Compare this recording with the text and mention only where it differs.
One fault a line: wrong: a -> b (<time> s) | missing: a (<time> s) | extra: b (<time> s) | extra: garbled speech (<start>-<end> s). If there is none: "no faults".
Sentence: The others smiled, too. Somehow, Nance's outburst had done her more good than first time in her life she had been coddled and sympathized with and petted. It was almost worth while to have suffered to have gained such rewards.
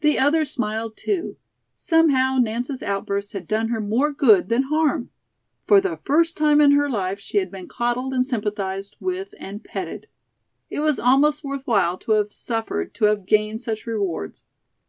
extra: harm For the (4.6 s)